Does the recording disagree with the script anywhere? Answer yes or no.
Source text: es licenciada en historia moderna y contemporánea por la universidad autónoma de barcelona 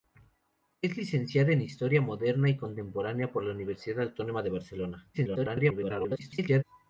yes